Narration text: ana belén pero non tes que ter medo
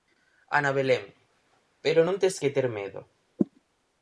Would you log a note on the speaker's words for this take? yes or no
no